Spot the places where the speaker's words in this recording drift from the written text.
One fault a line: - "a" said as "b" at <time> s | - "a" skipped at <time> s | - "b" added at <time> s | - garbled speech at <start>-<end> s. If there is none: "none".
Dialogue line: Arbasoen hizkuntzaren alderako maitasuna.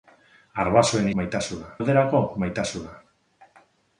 - "hizkuntzaren" said as "maitasuna" at 1.2 s